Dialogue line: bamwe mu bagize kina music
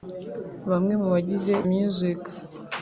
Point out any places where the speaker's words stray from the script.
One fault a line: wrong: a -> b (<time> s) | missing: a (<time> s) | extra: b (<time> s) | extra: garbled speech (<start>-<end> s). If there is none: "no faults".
missing: kina (1.5 s)